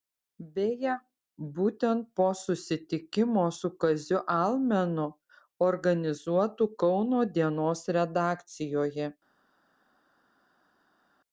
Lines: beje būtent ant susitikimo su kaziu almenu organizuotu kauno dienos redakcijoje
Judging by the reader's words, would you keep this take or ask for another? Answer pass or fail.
fail